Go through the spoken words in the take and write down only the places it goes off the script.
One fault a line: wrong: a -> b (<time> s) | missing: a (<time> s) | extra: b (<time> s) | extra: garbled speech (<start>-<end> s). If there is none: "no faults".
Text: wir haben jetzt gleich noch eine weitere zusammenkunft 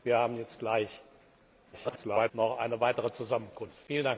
extra: garbled speech (1.7-2.3 s)